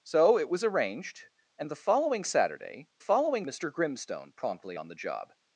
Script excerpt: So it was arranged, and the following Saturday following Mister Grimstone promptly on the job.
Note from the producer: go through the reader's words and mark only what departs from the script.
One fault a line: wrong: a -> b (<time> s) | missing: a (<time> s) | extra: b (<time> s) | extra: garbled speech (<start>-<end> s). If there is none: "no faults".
no faults